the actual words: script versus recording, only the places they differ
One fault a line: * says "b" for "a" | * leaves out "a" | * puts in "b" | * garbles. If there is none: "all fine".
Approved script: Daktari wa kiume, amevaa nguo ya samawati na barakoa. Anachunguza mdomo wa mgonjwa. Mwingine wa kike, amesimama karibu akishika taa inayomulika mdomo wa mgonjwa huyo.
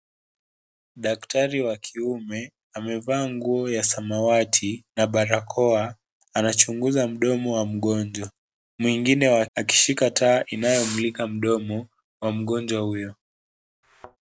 * leaves out "kike amesimama karibu"